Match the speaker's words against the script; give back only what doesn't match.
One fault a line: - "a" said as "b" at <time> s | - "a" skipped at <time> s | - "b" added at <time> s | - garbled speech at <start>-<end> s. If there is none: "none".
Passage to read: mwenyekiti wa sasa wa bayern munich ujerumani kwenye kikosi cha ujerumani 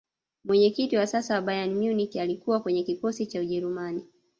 - "ujerumani" said as "alikuwa" at 2.1 s